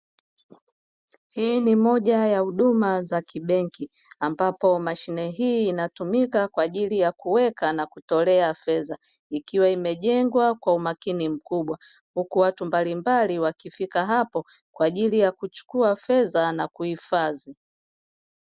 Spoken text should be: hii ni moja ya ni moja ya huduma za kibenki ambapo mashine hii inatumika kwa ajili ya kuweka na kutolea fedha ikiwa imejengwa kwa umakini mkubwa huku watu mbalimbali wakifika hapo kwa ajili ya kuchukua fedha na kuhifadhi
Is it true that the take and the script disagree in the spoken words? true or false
true